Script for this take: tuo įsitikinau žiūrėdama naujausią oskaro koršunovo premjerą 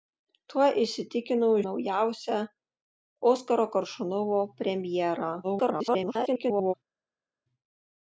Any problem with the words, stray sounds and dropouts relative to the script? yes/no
yes